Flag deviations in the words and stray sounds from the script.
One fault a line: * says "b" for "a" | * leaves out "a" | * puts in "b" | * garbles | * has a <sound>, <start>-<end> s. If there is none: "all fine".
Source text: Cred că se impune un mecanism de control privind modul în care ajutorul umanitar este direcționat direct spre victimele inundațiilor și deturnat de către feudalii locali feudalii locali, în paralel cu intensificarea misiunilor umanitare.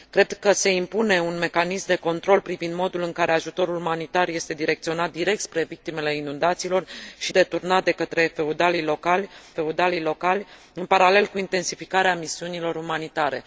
all fine